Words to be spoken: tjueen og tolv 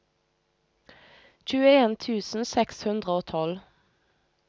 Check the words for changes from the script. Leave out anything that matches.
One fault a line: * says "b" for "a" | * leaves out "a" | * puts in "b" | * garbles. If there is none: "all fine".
* puts in "tusen seks hundre"